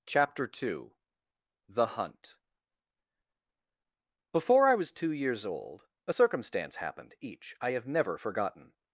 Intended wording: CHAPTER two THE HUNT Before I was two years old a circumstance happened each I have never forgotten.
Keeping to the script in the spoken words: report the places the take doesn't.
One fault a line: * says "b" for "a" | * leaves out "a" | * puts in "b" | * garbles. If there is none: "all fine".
all fine